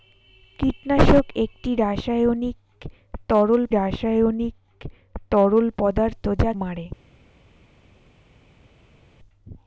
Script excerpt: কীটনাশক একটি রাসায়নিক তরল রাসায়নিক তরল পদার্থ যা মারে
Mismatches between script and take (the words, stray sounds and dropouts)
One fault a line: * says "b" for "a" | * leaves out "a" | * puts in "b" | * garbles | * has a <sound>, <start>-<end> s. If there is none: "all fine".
all fine